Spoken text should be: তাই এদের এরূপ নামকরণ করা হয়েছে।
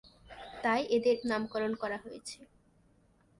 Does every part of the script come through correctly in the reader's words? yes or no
no